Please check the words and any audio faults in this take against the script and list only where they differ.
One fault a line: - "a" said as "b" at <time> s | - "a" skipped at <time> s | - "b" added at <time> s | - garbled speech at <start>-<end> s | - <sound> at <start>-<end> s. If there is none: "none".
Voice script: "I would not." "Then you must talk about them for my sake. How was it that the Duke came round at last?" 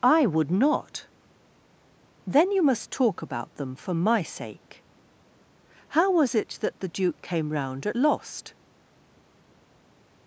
- "last" said as "lost" at 7.9 s